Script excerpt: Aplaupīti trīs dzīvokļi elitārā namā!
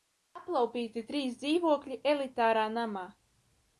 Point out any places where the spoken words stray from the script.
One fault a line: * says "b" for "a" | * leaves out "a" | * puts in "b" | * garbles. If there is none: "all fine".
all fine